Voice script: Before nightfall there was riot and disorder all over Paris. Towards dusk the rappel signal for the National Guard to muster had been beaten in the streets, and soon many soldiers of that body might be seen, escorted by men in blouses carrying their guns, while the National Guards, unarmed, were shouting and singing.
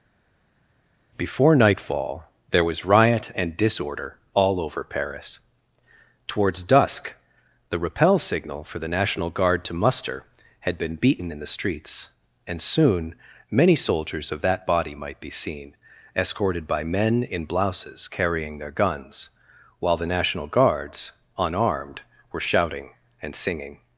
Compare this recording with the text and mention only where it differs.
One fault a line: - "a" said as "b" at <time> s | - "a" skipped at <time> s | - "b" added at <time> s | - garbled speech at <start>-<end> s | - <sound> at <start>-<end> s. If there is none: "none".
none